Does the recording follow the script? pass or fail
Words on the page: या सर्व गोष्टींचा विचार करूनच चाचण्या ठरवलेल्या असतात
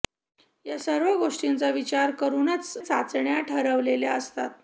pass